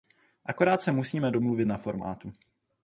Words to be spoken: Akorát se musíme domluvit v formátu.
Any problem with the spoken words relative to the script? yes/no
yes